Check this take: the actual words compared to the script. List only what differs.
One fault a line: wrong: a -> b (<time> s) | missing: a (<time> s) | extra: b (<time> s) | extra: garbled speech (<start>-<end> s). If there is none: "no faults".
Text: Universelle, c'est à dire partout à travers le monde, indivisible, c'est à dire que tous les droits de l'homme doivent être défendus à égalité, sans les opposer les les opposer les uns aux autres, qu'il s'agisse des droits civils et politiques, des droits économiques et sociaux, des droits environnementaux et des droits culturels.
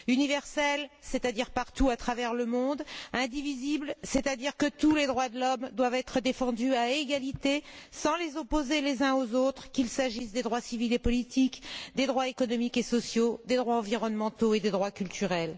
missing: les opposer les (9.0 s)